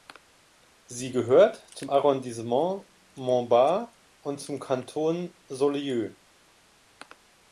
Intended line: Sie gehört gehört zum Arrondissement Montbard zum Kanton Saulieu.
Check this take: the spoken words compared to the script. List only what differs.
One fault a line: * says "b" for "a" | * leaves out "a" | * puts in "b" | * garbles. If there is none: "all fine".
* leaves out "gehört"
* puts in "und"